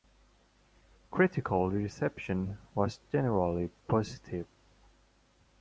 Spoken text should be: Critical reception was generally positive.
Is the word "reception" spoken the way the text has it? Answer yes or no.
yes